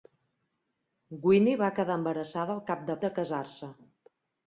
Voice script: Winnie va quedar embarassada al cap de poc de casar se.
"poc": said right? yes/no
no